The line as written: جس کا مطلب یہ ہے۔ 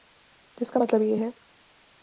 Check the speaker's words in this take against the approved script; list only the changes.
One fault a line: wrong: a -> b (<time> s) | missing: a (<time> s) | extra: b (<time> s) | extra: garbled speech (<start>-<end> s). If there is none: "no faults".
no faults